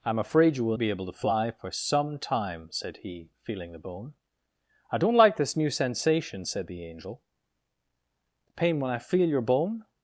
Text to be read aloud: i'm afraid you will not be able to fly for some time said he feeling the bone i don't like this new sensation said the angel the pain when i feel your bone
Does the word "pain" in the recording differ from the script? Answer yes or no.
no